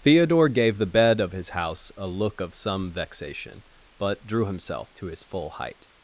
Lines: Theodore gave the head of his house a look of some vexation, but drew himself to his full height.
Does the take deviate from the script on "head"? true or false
true